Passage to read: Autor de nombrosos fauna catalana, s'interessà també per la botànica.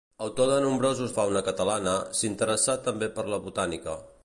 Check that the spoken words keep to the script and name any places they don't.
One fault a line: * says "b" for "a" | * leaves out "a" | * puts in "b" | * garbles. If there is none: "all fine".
all fine